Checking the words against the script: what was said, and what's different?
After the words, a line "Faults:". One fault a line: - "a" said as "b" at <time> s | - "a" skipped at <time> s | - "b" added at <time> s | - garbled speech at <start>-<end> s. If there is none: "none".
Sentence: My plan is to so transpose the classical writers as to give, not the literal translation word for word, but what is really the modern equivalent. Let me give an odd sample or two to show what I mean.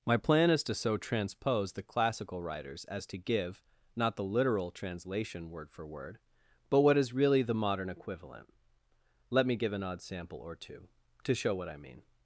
My plan is to so transpose the classical writers as to give, not the literal translation word for word, but what is really the modern equivalent. Let me give an odd sample or two to show what I mean.
Faults:
none